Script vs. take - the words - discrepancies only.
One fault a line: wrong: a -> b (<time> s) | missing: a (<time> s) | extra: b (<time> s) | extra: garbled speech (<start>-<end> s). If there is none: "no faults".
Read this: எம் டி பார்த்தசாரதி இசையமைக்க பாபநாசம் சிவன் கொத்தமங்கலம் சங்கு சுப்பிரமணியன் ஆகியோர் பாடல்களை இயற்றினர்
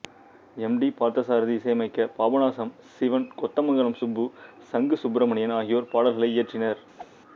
extra: சுப்பு (4.0 s)